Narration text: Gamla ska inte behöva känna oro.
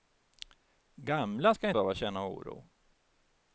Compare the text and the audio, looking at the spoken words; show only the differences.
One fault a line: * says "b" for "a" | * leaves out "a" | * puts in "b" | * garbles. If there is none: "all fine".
* leaves out "inte"